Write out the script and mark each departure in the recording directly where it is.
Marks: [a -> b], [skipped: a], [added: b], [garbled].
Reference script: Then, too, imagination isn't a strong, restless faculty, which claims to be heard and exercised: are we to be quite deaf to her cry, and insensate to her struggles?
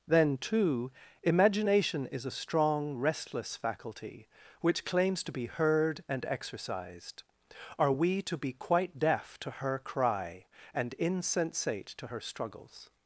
Then, too, imagination [isn't -> is] a strong, restless faculty, which claims to be heard and exercised: are we to be quite deaf to her cry, and insensate to her struggles?